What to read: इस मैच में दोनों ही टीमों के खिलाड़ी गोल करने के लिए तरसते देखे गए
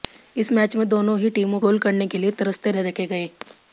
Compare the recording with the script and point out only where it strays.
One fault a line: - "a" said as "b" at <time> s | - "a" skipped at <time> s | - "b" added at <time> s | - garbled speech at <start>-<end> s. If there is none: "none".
- "के खिलाड़ी" skipped at 1.6 s